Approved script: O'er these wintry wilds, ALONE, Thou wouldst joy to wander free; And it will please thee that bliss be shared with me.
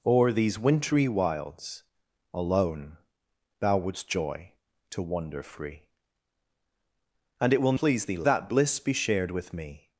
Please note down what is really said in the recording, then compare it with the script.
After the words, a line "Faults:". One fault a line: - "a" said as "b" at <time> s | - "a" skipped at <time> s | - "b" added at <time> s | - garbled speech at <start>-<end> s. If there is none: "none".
O'er these wintry wilds, ALONE, Thou wouldst joy to wander free; And it will please thee that bliss be shared with me.
Faults:
none